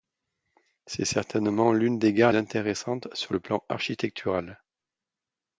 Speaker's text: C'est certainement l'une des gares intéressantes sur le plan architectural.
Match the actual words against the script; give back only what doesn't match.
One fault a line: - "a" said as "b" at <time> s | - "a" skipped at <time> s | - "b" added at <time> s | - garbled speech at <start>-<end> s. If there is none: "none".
none